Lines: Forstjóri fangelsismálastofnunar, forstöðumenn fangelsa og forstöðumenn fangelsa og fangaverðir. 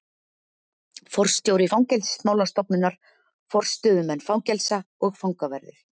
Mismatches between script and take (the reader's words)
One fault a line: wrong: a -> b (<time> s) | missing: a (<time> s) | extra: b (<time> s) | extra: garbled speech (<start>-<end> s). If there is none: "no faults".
missing: forstöðumenn fangelsa og (5.2 s)